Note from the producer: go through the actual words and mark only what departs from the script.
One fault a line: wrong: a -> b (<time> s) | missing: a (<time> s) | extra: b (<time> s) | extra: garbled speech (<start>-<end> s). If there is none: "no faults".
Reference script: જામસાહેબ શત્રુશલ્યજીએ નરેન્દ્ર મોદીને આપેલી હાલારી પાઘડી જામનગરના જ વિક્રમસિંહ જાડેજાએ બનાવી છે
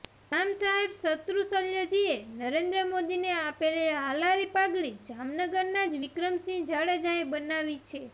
no faults